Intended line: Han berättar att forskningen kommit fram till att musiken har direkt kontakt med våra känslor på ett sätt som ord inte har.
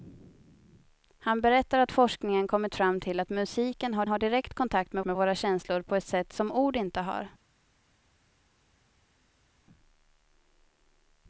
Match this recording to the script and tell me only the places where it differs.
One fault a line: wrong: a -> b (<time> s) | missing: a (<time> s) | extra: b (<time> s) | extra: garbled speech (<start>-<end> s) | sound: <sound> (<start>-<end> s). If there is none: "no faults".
extra: har (4.1 s)
extra: med (5.0 s)